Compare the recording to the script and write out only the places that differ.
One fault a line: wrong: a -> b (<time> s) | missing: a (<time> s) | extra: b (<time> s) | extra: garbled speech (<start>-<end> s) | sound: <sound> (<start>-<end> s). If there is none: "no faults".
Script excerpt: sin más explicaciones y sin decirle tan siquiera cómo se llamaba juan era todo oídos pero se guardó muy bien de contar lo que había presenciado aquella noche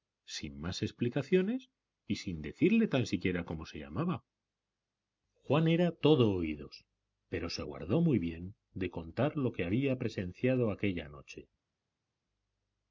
no faults